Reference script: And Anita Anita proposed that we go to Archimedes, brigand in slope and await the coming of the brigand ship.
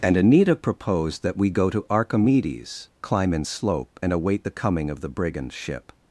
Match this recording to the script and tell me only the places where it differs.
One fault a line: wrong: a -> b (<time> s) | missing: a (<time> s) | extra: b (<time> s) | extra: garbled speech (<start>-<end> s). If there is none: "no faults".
missing: Anita (0.6 s)
wrong: brigand -> climb (3.0 s)